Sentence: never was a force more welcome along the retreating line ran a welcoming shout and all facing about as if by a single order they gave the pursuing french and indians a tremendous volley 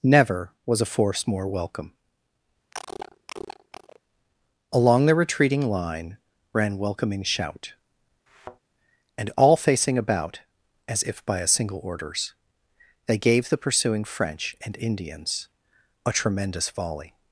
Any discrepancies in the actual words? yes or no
yes